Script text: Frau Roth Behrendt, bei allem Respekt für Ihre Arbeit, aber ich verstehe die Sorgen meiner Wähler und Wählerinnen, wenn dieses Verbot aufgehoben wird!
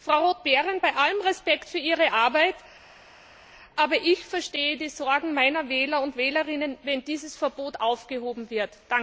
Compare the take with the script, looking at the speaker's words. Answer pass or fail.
pass